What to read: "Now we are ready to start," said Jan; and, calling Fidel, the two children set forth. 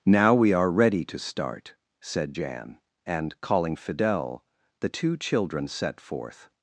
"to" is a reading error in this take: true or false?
false